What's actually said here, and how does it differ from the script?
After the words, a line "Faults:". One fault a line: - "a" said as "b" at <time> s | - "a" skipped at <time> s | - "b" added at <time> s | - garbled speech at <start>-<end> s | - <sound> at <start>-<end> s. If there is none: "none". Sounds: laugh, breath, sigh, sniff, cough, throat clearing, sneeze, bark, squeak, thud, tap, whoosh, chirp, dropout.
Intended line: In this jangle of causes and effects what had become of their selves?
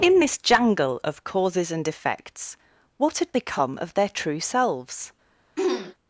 In this jangle of causes and effects what had become of their true selves?
Faults:
- "true" added at 4.1 s
- throat clearing at 5.6-5.9 s